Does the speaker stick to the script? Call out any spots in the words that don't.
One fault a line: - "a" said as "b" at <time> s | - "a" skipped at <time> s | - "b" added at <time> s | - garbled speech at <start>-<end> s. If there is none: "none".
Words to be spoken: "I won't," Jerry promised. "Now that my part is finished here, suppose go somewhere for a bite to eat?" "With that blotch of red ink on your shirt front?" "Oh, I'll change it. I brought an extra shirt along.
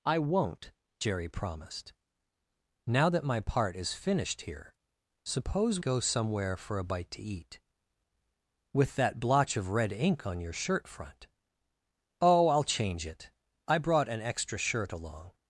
none